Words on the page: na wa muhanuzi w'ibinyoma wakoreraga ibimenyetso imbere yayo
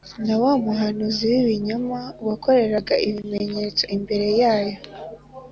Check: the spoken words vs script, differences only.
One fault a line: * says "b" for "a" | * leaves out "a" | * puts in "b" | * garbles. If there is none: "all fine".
all fine